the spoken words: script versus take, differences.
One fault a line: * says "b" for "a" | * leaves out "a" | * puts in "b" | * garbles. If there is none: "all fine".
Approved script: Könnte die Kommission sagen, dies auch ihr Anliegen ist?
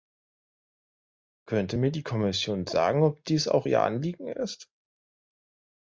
* puts in "mir"
* puts in "ob"